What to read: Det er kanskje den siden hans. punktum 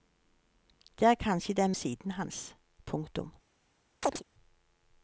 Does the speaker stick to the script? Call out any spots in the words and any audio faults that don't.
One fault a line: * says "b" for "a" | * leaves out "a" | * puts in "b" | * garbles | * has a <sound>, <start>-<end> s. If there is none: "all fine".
* has a chirp, 4.0-4.2 s